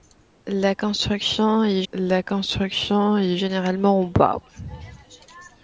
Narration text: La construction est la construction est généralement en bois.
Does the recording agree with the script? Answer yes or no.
yes